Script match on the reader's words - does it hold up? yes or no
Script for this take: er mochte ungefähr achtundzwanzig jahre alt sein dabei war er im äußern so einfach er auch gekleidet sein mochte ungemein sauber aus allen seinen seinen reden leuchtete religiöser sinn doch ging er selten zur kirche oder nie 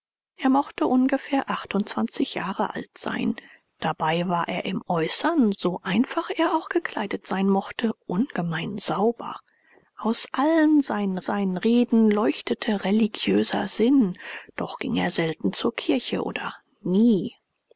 yes